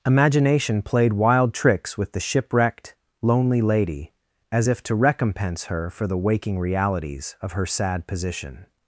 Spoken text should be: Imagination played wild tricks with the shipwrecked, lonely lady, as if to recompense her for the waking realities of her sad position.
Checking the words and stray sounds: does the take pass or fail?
pass